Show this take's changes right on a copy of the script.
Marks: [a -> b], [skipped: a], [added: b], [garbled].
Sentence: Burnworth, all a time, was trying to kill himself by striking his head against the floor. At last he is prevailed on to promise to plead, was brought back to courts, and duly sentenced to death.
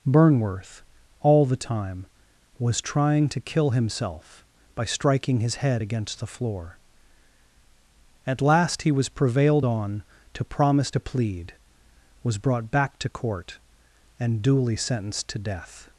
Burnworth, all [a -> the] time, was trying to kill himself by striking his head against the floor. At last he [is -> was] prevailed on to promise to plead, was brought back to [courts, -> court] and duly sentenced to death.